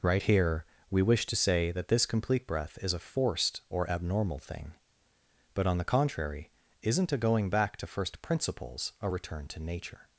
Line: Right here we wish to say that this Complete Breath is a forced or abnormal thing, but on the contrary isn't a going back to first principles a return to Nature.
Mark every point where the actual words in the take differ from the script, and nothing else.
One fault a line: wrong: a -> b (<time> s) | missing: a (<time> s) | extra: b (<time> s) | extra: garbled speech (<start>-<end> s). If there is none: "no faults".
no faults